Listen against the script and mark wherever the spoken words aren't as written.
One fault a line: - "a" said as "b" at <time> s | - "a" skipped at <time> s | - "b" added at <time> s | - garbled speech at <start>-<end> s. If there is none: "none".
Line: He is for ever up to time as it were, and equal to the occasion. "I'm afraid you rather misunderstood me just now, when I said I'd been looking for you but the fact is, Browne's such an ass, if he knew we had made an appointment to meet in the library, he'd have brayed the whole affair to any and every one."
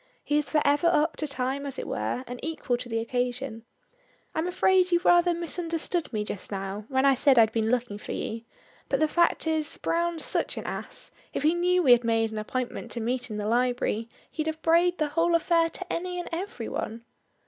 none